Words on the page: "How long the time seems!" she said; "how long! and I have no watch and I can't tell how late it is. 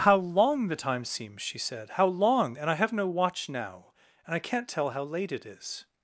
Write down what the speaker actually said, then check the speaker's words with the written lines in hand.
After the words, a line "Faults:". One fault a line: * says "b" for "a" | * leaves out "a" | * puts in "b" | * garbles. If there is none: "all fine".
"How long the time seems!" she said; "how long! and I have no watch now, and I can't tell how late it is.
Faults:
* puts in "now"